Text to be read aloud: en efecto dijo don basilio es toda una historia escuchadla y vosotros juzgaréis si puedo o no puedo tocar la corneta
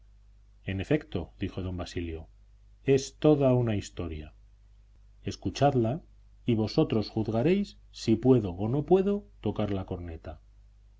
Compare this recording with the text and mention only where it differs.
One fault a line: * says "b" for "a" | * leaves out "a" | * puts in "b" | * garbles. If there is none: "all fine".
all fine